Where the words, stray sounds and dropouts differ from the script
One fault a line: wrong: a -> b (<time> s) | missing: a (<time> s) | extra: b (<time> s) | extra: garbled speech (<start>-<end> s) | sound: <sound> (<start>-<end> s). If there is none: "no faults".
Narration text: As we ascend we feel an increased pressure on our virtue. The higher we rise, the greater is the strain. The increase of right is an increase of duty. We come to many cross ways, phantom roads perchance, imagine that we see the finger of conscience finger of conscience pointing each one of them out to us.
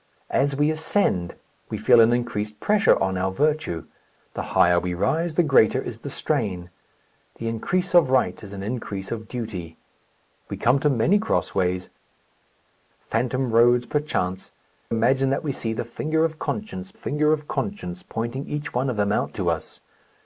no faults